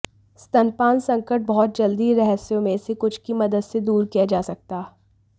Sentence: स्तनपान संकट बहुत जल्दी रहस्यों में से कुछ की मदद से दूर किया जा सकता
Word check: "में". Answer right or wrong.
right